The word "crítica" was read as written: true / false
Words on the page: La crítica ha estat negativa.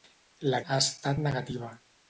false